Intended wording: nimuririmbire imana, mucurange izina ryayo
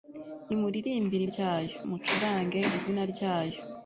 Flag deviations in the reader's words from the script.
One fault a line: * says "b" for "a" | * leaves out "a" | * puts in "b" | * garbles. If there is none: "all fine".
* says "ryayo" for "imana"